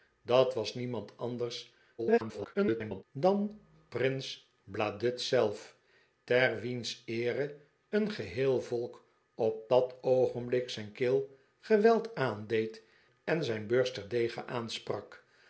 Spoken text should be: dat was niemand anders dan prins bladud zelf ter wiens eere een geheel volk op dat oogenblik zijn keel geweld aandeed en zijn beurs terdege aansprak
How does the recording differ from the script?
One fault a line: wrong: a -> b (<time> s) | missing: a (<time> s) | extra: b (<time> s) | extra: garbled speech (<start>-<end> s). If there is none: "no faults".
extra: garbled speech (2.0-3.0 s)